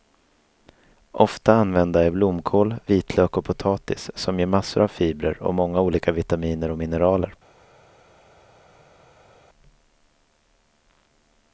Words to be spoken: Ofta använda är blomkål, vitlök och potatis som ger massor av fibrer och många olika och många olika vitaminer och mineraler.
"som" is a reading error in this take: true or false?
false